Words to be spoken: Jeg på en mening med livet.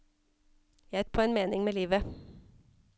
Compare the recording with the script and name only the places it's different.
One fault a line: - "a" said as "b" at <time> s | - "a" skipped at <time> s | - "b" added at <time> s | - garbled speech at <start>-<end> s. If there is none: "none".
none